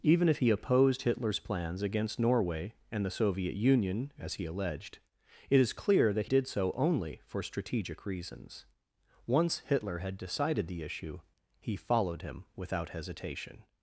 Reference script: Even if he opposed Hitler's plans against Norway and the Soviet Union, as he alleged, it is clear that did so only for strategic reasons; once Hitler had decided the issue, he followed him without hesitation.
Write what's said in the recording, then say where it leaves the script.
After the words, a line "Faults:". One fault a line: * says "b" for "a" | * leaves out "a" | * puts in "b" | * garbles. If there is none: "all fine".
Even if he opposed Hitler's plans against Norway and the Soviet Union, as he alleged, it is clear that did so only for strategic reasons; once Hitler had decided the issue, he followed him without hesitation.
Faults:
all fine